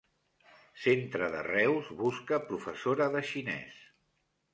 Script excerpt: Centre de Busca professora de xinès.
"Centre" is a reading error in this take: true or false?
false